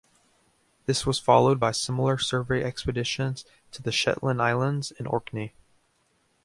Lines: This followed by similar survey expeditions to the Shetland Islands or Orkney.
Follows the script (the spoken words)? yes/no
no